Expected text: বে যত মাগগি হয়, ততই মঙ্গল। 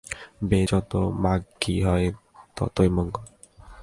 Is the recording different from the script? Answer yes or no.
no